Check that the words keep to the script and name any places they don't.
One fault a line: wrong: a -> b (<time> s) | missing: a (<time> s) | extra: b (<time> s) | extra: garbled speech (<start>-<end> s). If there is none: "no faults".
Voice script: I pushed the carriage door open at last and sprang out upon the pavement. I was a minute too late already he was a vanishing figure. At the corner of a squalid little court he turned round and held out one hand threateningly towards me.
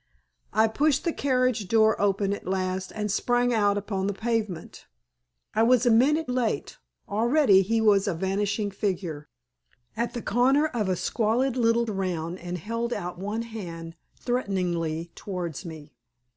missing: too (6.3 s)
missing: court he turned (11.9 s)